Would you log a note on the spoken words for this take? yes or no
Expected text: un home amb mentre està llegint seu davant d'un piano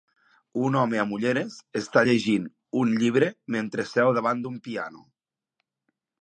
yes